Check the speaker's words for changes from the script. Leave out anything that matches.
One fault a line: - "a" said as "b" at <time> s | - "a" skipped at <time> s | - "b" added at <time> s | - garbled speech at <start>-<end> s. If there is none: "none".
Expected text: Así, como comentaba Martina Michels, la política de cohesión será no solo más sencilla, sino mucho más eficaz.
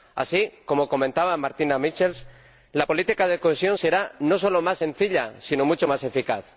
none